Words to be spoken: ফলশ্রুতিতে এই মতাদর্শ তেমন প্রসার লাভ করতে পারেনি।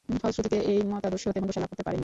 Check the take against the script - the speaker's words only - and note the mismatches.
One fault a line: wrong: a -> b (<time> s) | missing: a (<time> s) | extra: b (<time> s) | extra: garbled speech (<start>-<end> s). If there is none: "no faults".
no faults